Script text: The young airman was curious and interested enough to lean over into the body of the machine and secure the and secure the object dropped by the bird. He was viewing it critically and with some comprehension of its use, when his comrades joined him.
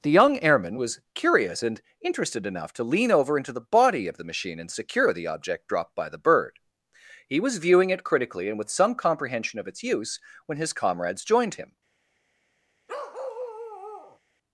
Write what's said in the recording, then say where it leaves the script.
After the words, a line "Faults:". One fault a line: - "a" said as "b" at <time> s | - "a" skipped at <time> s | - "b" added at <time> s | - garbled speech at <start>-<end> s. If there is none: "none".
The young airman was curious and interested enough to lean over into the body of the machine and secure the object dropped by the bird. He was viewing it critically and with some comprehension of its use, when his comrades joined him.
Faults:
- "and secure the" skipped at 5.3 s